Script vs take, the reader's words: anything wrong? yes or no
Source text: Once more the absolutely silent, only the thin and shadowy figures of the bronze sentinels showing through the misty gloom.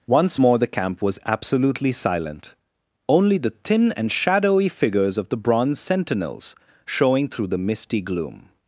yes